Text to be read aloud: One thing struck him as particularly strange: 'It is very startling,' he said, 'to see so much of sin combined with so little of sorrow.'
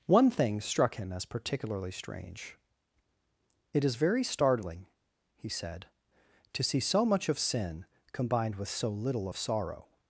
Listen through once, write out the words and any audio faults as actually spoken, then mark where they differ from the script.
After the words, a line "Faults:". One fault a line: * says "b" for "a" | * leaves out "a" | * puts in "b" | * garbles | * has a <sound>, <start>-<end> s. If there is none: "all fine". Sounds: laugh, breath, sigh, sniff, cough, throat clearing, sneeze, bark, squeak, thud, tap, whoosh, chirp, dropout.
One thing struck him as particularly strange: 'It is very startling,' he said, 'to see so much of sin combined with so little of sorrow.'
Faults:
all fine